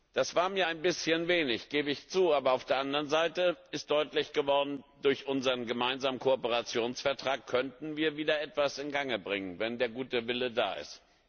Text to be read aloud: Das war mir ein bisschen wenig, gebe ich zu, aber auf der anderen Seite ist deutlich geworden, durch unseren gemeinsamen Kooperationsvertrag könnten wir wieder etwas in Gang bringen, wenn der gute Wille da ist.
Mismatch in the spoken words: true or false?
false